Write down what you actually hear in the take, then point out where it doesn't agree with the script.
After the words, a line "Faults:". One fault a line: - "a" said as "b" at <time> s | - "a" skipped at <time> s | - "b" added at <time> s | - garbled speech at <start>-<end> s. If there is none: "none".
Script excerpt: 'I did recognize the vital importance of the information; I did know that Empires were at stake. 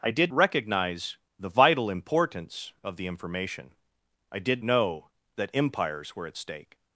'I did recognize the vital importance of the information; I did know that Empires were at stake.
Faults:
none